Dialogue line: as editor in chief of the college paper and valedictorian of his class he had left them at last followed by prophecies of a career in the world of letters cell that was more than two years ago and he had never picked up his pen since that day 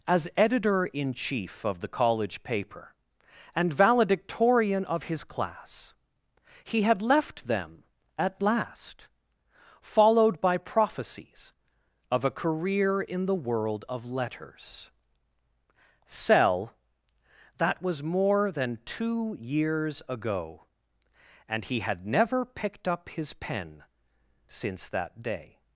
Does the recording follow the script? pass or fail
pass